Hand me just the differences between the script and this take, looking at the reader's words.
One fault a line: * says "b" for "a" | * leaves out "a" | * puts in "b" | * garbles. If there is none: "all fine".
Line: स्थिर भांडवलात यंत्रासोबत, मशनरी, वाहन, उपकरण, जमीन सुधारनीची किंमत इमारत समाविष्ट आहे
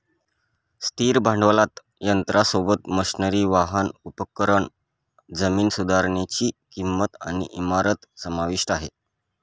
* puts in "आणि"